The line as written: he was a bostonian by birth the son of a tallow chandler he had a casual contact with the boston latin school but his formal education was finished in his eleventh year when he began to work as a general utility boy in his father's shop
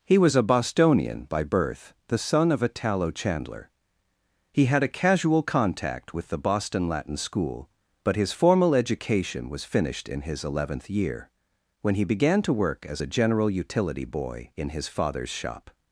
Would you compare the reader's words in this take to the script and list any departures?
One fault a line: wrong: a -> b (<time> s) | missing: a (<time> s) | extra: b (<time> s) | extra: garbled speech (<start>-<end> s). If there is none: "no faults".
no faults